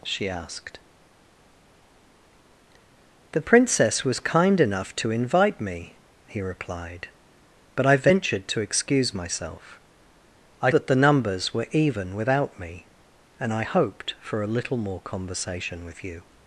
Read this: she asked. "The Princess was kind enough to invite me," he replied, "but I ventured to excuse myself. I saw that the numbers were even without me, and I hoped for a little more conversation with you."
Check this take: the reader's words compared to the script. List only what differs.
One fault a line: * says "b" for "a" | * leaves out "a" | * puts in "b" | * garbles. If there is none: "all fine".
* leaves out "saw"